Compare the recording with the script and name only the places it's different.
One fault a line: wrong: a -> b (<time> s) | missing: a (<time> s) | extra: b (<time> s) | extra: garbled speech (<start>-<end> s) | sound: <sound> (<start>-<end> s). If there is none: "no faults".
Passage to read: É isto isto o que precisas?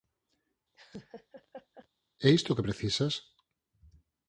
sound: laugh (0.7-1.9 s)
missing: isto (2.5 s)